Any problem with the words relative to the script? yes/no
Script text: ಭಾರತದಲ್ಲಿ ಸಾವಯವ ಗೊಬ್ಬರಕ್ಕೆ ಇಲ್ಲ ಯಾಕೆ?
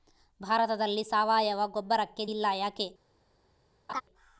no